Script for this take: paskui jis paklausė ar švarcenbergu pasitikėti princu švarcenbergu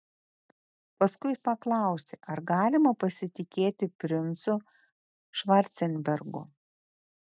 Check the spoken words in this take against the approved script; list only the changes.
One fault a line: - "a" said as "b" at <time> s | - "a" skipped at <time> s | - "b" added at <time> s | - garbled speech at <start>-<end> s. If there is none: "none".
- "švarcenbergu" said as "galima" at 2.5 s